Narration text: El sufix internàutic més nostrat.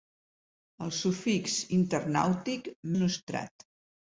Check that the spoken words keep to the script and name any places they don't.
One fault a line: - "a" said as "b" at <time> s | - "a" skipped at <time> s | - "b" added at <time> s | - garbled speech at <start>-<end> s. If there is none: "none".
- "més" skipped at 2.7 s